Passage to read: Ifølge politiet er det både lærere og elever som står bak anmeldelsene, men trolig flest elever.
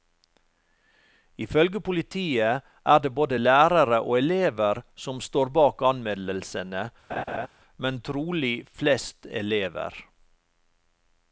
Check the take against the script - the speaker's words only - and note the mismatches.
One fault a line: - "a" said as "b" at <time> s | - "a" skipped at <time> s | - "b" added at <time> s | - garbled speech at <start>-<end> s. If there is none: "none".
none